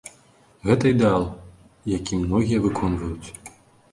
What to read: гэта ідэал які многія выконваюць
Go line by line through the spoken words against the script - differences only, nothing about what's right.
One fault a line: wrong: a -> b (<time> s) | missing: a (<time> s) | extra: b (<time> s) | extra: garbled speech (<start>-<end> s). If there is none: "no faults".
no faults